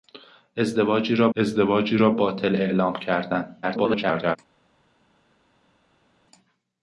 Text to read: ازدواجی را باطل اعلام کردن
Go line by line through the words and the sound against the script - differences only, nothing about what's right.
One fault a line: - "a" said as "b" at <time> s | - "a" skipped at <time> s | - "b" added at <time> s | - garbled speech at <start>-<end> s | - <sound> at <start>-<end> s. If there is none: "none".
- "ازدواجی را" added at 1.4 s
- garbled speech at 3.6-4.4 s